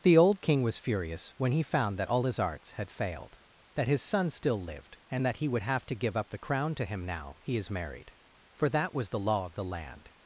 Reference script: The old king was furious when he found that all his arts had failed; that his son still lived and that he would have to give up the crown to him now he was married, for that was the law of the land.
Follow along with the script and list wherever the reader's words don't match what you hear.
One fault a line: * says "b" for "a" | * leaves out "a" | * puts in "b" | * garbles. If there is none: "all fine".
* says "is" for "was"